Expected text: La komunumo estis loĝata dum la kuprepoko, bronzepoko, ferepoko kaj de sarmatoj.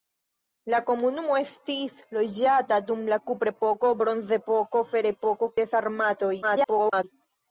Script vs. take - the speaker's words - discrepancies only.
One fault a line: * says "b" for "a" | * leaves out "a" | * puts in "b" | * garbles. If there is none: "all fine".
* leaves out "kaj"
* garbles